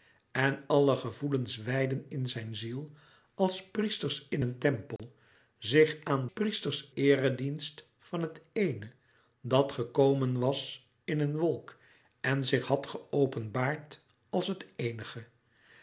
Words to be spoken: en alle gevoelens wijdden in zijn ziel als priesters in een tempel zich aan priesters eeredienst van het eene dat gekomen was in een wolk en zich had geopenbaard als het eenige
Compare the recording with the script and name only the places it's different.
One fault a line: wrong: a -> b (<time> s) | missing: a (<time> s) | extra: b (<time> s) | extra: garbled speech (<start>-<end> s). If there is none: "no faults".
no faults